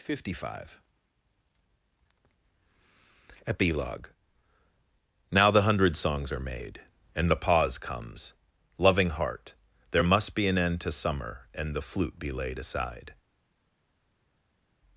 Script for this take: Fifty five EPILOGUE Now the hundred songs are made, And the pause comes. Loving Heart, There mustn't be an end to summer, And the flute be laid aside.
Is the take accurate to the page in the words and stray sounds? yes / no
no